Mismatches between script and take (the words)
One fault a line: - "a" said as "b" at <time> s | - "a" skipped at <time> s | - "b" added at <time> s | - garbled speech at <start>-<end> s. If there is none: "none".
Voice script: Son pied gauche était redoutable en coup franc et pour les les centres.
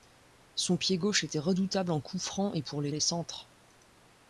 none